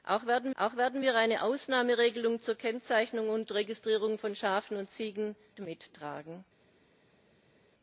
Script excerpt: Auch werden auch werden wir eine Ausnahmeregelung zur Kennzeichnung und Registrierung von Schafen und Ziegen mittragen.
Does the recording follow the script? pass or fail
pass